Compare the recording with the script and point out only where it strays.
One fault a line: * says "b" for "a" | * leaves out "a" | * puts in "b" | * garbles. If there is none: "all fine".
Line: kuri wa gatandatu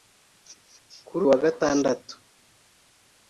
all fine